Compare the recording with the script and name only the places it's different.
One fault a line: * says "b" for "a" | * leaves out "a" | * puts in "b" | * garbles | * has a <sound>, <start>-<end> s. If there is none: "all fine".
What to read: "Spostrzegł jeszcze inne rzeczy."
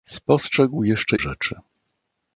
* leaves out "inne"